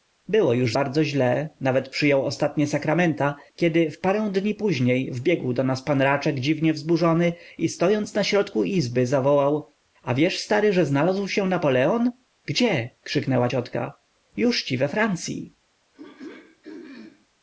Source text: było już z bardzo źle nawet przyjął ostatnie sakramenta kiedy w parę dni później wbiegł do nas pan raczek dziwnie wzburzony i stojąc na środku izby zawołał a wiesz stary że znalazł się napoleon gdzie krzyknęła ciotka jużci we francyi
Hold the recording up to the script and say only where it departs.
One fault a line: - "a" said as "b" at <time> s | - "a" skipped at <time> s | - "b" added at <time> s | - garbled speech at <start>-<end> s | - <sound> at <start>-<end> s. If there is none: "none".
- throat clearing at 15.9-17.3 s